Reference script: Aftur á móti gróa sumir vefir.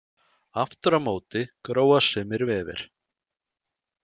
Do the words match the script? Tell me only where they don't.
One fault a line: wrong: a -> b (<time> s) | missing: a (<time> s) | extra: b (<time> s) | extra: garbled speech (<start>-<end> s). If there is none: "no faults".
no faults